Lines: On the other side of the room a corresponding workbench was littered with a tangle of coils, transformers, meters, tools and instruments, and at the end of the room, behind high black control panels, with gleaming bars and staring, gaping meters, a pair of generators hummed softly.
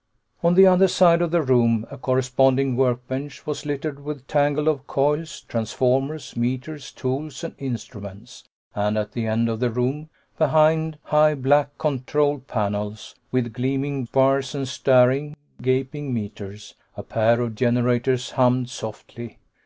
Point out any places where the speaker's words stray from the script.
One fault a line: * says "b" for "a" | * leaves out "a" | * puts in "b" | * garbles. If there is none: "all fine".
all fine